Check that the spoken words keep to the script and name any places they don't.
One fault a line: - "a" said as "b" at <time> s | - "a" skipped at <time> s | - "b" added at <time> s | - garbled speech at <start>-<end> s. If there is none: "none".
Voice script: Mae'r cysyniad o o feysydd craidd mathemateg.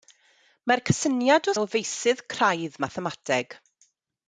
none